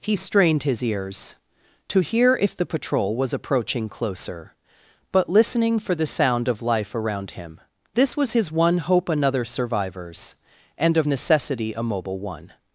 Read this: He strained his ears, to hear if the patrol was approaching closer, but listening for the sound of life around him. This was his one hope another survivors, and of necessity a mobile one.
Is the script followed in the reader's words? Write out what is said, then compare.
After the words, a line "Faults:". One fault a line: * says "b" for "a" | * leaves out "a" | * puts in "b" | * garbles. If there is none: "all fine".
He strained his ears, to hear if the patrol was approaching closer, but listening for the sound of life around him. This was his one hope another survivors, and of necessity a mobile one.
Faults:
all fine